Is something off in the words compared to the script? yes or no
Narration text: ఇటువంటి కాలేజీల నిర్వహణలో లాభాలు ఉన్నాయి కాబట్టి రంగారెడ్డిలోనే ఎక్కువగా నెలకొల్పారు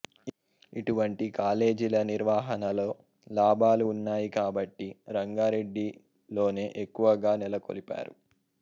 no